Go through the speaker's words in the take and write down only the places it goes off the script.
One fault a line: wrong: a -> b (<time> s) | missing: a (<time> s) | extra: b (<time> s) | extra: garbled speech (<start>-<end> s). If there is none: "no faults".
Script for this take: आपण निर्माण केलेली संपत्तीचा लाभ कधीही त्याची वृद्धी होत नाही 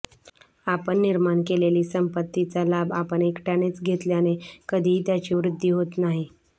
extra: आपण एकट्यानेच घेतल्याने (2.9 s)